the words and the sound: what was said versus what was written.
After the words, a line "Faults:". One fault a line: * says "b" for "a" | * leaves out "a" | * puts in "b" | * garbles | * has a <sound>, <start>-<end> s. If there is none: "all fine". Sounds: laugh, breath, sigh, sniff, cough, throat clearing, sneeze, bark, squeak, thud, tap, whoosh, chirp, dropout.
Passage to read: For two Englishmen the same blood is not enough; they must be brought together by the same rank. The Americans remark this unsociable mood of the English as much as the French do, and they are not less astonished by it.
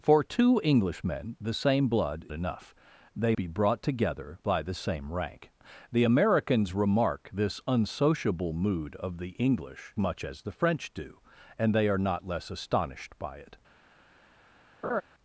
For two Englishmen the same blood enough; they be brought together by the same rank. The Americans remark this unsociable mood of the English much as the French do, and they are not less astonished by it.
Faults:
* leaves out "is not"
* leaves out "must"
* leaves out "as"
* has a laugh, 14.8-15.0 s